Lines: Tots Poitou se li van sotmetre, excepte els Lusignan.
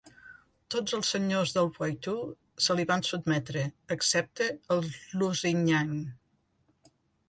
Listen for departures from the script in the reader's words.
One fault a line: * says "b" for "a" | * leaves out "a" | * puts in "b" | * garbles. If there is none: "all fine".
* puts in "els senyors del"